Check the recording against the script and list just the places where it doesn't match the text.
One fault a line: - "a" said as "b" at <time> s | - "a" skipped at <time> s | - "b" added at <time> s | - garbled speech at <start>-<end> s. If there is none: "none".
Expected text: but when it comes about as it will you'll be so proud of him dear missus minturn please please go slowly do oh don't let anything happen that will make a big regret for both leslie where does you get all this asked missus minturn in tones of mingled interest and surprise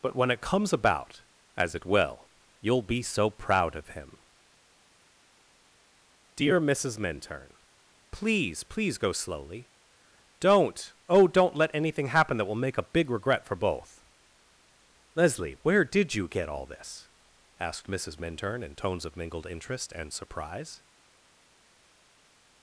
- "do" said as "don't" at 10.4 s
- "does" said as "did" at 15.8 s